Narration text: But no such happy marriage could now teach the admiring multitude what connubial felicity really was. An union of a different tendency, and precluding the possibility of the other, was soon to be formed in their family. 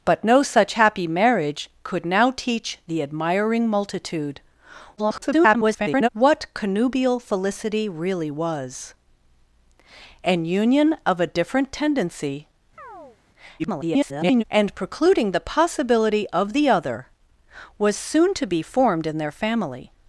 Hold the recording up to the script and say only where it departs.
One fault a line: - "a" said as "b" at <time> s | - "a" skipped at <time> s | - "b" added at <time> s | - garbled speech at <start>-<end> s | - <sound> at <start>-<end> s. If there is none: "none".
- garbled speech at 5.0-6.1 s
- chirp at 12.8-13.2 s
- garbled speech at 13.6-14.4 s